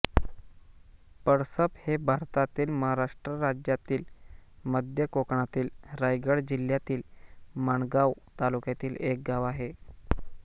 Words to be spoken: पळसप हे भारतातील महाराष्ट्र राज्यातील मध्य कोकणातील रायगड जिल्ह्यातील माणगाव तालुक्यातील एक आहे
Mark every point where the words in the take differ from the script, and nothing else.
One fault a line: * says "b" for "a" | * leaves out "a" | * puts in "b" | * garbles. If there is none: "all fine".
* puts in "गाव"